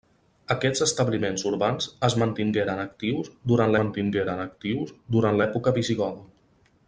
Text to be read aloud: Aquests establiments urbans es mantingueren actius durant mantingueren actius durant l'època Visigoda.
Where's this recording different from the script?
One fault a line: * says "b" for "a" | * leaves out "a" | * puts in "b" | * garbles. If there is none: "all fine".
all fine